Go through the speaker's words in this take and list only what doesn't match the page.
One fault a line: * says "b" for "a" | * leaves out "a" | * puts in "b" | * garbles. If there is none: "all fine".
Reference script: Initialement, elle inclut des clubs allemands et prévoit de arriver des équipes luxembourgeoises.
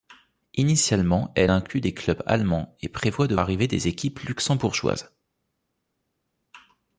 all fine